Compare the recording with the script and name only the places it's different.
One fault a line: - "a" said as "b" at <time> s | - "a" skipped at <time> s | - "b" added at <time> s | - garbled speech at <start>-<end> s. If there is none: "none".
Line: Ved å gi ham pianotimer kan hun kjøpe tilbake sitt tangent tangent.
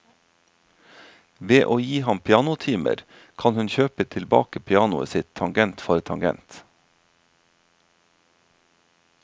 - "pianoet" added at 4.7 s
- "for" added at 5.8 s